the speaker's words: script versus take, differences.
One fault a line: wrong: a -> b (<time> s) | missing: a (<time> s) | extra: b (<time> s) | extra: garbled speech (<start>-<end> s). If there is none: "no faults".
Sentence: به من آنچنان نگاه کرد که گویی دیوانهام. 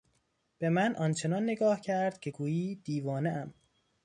no faults